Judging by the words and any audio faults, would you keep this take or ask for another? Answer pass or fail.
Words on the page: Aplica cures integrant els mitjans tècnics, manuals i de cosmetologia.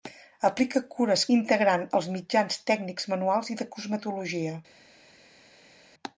pass